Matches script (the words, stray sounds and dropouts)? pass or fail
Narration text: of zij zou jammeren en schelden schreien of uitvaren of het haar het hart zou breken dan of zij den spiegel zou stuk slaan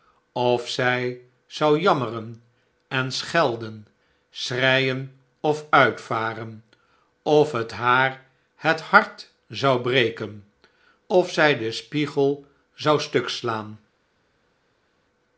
fail